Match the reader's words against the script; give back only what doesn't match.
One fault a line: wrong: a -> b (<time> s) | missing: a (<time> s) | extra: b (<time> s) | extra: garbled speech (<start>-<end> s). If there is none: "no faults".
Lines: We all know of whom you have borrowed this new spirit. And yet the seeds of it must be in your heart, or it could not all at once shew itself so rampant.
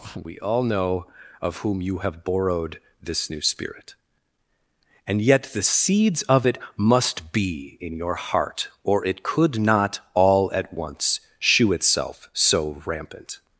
no faults